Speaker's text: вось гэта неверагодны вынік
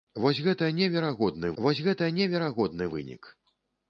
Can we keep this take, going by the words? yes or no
no